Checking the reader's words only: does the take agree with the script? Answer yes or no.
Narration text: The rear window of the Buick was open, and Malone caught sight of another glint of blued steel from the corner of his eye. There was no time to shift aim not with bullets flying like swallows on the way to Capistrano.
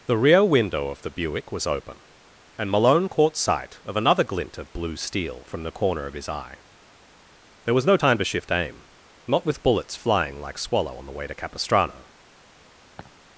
no